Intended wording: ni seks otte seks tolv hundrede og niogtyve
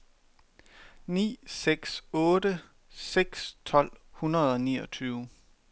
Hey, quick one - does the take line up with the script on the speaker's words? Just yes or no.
yes